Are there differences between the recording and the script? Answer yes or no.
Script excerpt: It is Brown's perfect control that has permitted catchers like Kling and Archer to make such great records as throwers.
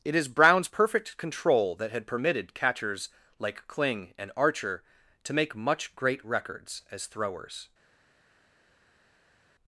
yes